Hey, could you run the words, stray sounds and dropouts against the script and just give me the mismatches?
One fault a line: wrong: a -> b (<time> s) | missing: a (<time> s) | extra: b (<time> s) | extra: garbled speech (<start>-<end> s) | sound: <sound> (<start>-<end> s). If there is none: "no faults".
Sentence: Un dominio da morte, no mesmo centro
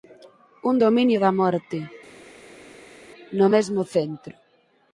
no faults